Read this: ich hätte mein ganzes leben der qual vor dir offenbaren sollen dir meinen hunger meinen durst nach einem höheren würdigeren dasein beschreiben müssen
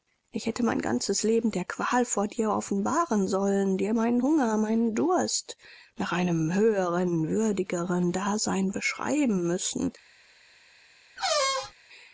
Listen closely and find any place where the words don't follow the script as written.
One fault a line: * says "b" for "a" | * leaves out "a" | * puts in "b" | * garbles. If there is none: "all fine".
all fine